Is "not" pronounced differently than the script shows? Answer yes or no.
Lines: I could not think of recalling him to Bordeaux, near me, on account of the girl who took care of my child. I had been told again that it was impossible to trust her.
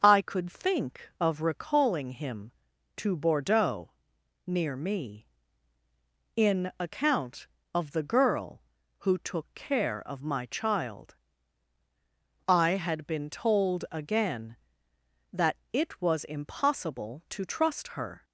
yes